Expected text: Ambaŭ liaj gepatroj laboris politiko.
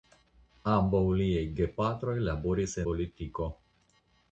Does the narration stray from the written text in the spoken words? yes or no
no